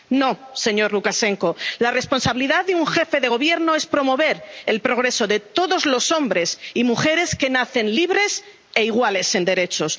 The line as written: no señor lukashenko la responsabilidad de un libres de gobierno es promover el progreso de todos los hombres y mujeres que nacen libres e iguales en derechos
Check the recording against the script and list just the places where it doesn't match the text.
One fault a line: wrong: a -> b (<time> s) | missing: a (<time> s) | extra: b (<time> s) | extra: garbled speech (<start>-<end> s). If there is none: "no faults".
wrong: libres -> jefe (2.9 s)